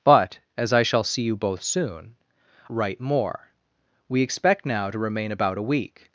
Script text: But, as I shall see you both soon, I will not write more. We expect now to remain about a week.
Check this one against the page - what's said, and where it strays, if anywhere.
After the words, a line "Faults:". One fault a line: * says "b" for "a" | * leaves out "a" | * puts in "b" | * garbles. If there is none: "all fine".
But, as I shall see you both soon, write more. We expect now to remain about a week.
Faults:
* leaves out "I will not"